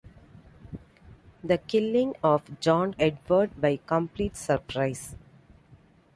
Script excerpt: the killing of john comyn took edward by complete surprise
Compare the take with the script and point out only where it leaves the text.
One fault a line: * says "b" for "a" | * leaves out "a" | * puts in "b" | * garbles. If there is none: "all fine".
* leaves out "comyn took"